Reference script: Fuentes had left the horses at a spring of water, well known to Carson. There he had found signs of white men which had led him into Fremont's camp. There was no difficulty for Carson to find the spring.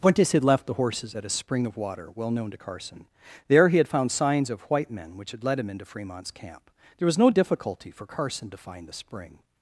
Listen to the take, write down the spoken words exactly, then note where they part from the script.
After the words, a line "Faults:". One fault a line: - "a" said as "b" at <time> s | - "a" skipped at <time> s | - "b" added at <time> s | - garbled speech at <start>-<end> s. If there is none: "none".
Fuentes had left the horses at a spring of water, well known to Carson. There he had found signs of white men which had led him into Fremont's camp. There was no difficulty for Carson to find the spring.
Faults:
none